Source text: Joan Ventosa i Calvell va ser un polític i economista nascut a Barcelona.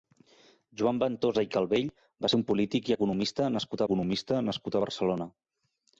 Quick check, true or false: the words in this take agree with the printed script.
false